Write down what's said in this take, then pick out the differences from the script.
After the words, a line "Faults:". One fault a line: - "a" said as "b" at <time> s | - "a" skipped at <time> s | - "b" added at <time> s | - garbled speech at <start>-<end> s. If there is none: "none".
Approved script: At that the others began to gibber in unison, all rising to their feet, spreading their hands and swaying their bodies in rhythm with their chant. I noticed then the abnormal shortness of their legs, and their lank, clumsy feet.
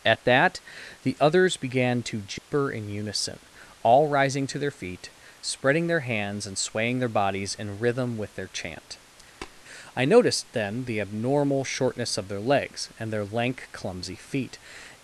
At that the others began to gibber in unison, all rising to their feet, spreading their hands and swaying their bodies in rhythm with their chant. I noticed then the abnormal shortness of their legs, and their lank, clumsy feet.
Faults:
none